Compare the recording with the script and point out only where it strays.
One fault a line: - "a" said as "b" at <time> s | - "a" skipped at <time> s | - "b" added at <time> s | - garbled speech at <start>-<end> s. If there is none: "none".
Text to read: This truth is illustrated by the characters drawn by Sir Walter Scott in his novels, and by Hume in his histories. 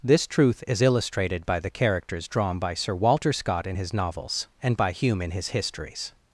none